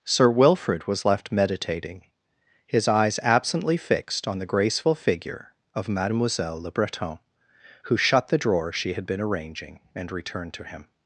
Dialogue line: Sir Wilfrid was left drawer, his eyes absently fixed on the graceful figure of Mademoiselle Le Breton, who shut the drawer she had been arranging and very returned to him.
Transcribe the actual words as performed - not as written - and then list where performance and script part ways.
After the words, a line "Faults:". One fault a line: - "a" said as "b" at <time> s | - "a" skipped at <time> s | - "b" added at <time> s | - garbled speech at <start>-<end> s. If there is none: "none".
Sir Wilfrid was left meditating, his eyes absently fixed on the graceful figure of Mademoiselle Le Breton, who shut the drawer she had been arranging and returned to him.
Faults:
- "drawer" said as "meditating" at 1.3 s
- "very" skipped at 10.1 s